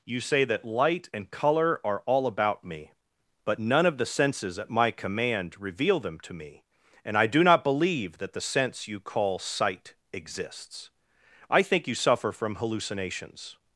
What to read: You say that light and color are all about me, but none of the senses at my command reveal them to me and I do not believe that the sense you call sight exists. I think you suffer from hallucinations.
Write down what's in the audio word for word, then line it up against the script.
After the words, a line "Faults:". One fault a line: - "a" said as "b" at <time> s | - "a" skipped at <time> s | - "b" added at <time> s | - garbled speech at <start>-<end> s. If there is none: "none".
You say that light and color are all about me, but none of the senses at my command reveal them to me and I do not believe that the sense you call sight exists. I think you suffer from hallucinations.
Faults:
none